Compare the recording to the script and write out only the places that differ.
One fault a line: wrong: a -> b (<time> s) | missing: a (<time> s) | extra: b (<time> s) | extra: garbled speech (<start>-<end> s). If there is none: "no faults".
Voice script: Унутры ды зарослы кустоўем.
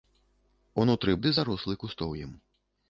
no faults